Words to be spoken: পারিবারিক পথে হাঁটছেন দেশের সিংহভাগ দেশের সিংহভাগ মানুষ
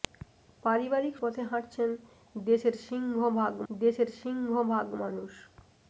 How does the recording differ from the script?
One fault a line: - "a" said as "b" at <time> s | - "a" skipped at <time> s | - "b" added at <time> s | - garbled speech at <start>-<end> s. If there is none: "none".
none